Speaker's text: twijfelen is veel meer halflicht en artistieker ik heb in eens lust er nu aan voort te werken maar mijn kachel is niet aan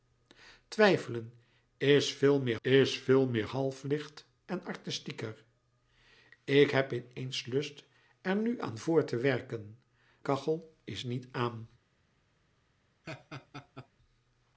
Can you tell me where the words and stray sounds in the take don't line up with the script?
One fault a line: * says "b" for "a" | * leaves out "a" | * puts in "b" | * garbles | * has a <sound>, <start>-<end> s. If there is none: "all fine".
* puts in "is veel meer"
* leaves out "maar mijn"
* has a laugh, 13.0-13.9 s